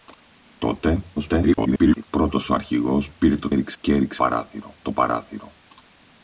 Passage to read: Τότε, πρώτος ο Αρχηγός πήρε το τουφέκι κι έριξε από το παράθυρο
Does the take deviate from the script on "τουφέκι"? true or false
true